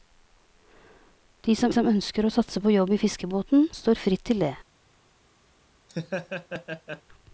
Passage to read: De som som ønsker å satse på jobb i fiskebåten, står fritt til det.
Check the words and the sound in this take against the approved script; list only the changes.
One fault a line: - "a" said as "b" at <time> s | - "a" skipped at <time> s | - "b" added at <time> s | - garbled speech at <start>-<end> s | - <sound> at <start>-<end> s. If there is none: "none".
- laugh at 5.9-7.0 s